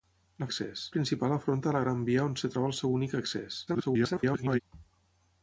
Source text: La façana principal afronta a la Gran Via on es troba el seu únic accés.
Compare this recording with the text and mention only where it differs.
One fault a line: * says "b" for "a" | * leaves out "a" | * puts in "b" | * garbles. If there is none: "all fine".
* says "accés" for "façana"
* garbles